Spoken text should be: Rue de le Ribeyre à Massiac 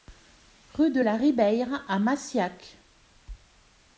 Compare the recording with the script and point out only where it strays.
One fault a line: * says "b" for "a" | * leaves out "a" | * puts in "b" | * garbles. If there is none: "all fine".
* says "la" for "le"